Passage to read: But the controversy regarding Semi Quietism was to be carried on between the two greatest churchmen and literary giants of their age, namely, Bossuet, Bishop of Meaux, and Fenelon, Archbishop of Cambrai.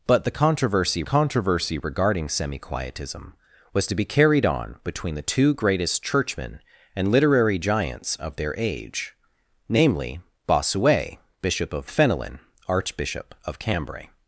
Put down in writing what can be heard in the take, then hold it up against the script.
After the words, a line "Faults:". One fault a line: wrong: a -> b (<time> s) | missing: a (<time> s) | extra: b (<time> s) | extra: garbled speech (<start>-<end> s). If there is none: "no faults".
But the controversy controversy regarding Semi Quietism was to be carried on between the two greatest churchmen and literary giants of their age, namely, Bossuet, Bishop of Fenelon, Archbishop of Cambrai.
Faults:
extra: controversy (1.0 s)
missing: Meaux and (11.9 s)